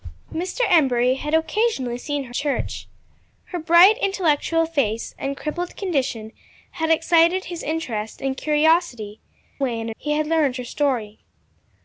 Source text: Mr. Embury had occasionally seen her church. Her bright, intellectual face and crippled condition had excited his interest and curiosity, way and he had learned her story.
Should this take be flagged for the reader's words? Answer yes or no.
no